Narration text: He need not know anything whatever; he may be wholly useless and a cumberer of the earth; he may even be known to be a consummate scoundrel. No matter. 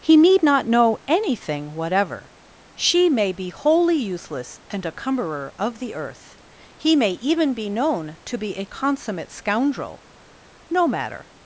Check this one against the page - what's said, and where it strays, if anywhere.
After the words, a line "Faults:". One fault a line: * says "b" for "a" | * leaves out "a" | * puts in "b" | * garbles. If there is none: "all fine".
He need not know anything whatever; she may be wholly useless and a cumberer of the earth; he may even be known to be a consummate scoundrel. No matter.
Faults:
* says "she" for "he"